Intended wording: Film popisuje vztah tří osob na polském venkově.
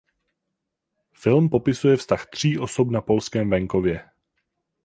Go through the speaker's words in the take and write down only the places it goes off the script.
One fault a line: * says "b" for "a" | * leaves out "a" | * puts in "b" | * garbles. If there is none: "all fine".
all fine